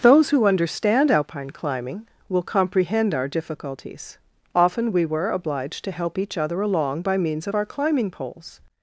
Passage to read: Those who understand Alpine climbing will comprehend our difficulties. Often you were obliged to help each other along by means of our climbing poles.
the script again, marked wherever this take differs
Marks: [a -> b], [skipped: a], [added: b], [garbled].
Those who understand Alpine climbing will comprehend our difficulties. Often [you -> we] were obliged to help each other along by means of our climbing poles.